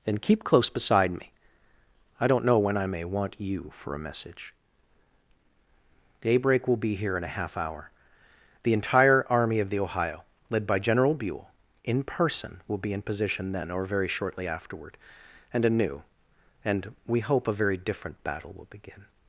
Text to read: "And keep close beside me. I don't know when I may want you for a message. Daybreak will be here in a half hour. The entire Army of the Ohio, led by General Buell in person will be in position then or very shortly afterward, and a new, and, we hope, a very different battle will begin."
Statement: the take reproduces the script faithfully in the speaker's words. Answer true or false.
true